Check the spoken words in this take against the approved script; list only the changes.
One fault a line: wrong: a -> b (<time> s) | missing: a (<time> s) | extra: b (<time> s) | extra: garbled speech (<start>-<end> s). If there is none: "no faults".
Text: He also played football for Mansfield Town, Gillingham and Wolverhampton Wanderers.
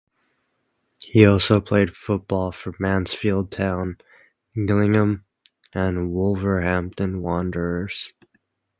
no faults